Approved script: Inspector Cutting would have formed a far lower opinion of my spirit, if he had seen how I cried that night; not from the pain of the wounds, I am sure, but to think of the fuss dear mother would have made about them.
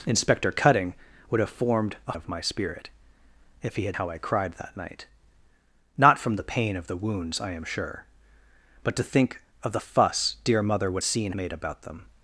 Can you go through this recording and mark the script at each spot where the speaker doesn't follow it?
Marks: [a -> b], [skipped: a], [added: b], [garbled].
Inspector Cutting would have formed a [skipped: far lower opinion] of my spirit, if he had [skipped: seen] how I cried that night; not from the pain of the wounds, I am sure, but to think of the fuss dear mother would [have -> seen] made about them.